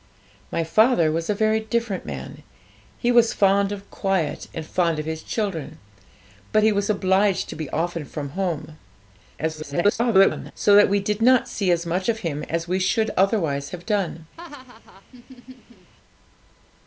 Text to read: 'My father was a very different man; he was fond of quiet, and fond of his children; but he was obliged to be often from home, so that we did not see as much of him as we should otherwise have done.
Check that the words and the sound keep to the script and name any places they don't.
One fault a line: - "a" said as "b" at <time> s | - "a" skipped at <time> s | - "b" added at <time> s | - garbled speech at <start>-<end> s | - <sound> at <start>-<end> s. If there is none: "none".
- garbled speech at 9.4-10.5 s
- laugh at 14.4-15.9 s